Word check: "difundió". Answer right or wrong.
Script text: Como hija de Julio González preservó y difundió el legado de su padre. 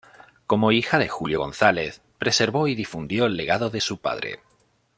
right